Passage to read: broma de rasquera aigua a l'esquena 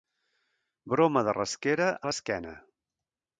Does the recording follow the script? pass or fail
fail